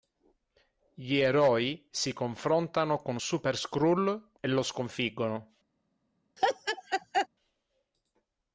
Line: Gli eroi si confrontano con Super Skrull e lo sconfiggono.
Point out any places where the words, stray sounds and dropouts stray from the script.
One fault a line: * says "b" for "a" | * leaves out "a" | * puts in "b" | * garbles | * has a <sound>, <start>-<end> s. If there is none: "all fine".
* has a laugh, 6.4-7.3 s